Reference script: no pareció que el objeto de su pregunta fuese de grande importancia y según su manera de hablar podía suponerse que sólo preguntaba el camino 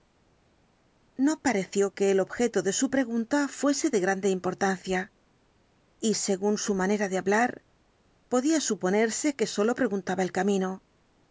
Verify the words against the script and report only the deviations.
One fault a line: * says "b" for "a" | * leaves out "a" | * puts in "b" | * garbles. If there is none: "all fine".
all fine